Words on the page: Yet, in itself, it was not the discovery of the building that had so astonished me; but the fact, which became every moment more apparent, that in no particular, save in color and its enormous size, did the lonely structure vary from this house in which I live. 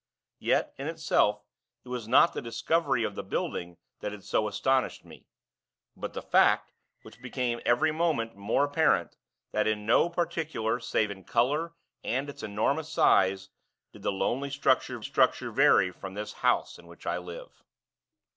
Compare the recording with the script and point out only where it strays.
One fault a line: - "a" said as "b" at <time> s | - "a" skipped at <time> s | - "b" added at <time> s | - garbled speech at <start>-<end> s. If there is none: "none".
- "structure" added at 15.0 s